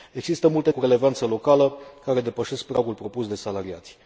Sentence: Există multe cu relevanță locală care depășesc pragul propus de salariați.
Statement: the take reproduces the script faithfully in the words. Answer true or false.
true